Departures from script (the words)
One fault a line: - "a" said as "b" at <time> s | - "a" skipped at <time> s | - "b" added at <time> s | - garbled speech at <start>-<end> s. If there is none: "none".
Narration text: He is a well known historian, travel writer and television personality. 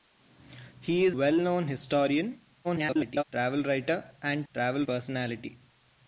- "a" skipped at 1.1 s
- garbled speech at 2.6-3.2 s
- "television" said as "travel" at 4.5 s